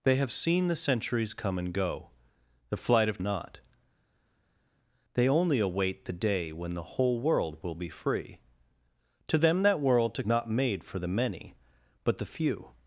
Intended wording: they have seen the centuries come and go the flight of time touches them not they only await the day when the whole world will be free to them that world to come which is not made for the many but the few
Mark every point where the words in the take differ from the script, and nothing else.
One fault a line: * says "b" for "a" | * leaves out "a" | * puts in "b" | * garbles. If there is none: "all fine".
* leaves out "time touches them"
* leaves out "come which is"